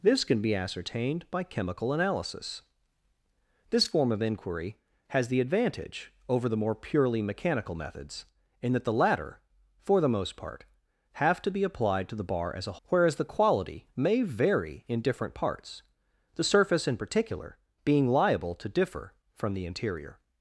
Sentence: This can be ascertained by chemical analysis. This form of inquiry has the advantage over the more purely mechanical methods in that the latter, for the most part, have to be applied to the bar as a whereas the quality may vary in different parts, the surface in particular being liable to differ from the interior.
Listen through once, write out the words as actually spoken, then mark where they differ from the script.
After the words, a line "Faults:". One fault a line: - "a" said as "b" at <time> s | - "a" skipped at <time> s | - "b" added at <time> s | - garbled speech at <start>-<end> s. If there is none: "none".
This can be ascertained by chemical analysis. This form of inquiry has the advantage over the more purely mechanical methods in that the latter, for the most part, have to be applied to the bar as a whereas the quality may vary in different parts, the surface in particular being liable to differ from the interior.
Faults:
none